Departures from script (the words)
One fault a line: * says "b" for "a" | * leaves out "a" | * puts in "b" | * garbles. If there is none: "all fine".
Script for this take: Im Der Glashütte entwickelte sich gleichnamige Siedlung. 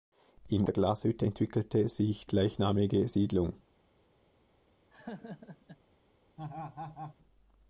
all fine